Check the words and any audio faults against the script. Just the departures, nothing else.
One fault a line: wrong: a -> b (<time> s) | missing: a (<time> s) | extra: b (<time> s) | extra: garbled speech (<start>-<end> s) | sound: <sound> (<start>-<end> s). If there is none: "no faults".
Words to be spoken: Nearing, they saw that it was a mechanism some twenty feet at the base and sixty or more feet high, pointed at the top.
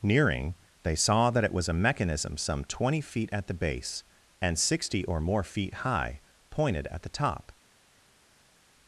no faults